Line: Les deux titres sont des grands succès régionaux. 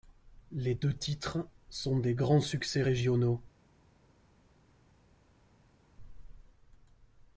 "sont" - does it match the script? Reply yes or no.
yes